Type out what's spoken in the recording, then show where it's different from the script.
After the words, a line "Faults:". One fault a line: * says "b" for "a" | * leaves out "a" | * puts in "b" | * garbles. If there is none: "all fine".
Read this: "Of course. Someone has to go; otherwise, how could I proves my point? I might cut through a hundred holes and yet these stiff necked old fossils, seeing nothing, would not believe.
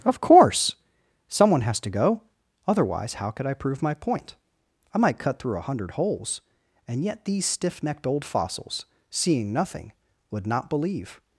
"Of course. Someone has to go; otherwise, how could I prove my point? I might cut through a hundred holes and yet these stiff necked old fossils, seeing nothing, would not believe.
Faults:
* says "prove" for "proves"